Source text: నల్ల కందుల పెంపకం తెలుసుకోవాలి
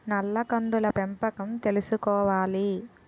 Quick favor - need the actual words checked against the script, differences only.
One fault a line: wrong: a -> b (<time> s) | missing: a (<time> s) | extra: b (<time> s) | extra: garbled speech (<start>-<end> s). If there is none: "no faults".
no faults